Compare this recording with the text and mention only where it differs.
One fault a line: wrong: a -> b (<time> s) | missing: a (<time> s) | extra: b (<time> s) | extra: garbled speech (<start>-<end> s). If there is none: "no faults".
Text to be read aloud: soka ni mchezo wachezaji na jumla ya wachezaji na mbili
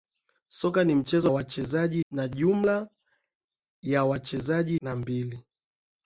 no faults